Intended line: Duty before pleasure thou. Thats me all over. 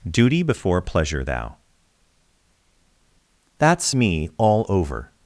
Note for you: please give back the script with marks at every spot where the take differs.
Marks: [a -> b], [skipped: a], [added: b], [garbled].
Duty before pleasure thou. Thats me all over.